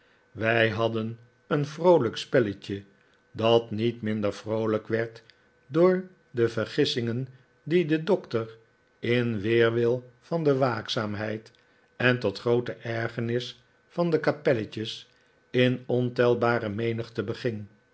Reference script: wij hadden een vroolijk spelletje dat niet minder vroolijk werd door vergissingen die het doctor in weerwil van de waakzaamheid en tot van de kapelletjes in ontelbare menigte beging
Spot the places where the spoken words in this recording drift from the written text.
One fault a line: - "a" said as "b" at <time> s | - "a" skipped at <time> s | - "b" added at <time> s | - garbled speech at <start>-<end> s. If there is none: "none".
- "de" added at 6.3 s
- "het" said as "de" at 7.8 s
- "groote ergernis" added at 12.4 s